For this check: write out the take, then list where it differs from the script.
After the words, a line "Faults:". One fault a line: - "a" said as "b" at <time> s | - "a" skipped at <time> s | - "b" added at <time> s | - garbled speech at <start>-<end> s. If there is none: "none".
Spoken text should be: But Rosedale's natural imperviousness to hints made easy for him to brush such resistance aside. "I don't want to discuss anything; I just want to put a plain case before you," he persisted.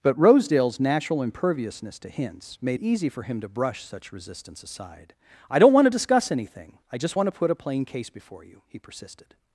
But Rosedale's natural imperviousness to hints made easy for him to brush such resistance aside. "I don't want to discuss anything; I just want to put a plain case before you," he persisted.
Faults:
none